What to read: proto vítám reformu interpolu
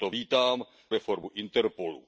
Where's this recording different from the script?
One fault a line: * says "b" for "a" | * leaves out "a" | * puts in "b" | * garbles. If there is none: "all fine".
all fine